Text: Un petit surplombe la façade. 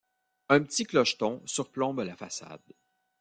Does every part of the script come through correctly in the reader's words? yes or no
no